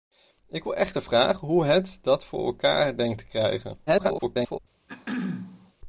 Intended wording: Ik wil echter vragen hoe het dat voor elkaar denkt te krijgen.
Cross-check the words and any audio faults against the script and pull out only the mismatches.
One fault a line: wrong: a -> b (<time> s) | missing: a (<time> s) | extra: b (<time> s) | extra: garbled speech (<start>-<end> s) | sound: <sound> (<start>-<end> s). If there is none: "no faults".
extra: garbled speech (3.9-4.6 s)
sound: throat clearing (4.9-5.7 s)